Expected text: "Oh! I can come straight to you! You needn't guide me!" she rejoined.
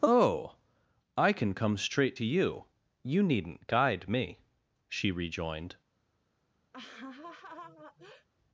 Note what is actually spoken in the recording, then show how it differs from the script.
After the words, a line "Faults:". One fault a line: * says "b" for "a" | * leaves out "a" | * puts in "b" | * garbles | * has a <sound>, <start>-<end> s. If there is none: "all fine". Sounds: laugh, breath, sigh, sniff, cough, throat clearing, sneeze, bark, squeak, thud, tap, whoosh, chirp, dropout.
"Oh! I can come straight to you! You needn't guide me!" she rejoined.
Faults:
* has a laugh, 6.7-8.3 s